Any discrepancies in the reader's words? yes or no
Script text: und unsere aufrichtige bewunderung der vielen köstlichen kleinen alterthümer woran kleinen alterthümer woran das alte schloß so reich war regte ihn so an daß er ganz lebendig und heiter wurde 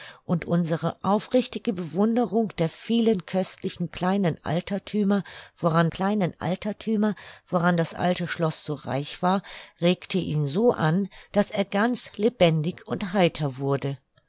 no